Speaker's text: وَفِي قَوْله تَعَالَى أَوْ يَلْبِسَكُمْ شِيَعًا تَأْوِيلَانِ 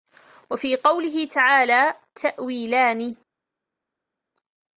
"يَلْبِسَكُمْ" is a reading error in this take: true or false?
true